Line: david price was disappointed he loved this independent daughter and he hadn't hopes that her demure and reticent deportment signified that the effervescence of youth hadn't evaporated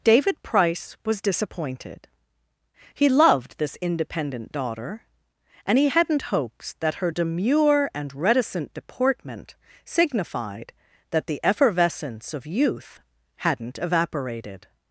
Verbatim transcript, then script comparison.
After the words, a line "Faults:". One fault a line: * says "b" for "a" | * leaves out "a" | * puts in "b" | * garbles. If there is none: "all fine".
david price was disappointed he loved this independent daughter and he hadn't hopes that her demure and reticent deportment signified that the effervescence of youth hadn't evaporated
Faults:
all fine